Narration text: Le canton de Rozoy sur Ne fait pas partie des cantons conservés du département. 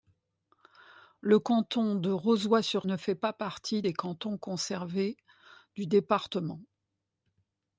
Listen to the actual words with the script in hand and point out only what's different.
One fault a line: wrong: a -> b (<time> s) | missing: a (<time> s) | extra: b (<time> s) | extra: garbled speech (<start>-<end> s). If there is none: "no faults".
no faults